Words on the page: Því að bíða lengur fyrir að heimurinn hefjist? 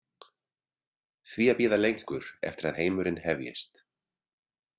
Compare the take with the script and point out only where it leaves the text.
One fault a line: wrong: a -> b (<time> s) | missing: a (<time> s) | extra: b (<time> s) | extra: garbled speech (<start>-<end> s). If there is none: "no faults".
wrong: fyrir -> eftir (2.5 s)